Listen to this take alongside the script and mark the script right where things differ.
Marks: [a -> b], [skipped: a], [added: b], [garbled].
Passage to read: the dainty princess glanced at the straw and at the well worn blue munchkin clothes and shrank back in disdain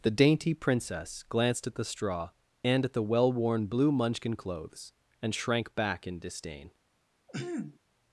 the dainty princess glanced at the straw and at the well worn blue munchkin clothes and shrank back in disdain